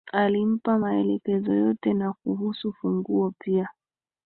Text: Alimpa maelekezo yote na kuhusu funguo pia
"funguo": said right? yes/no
yes